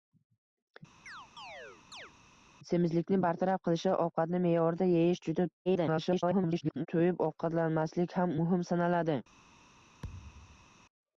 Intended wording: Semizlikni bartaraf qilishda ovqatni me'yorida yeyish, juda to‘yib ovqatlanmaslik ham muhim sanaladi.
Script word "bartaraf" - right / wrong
right